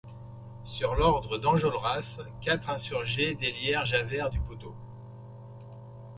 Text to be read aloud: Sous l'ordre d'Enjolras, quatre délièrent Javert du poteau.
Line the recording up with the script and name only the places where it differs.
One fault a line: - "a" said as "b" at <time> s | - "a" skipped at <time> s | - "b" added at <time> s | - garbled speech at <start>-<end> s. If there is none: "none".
- "Sous" said as "Sur" at 0.7 s
- "insurgés" added at 2.7 s